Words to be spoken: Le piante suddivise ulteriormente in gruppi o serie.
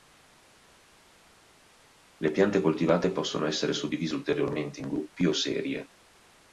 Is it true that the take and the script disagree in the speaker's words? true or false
true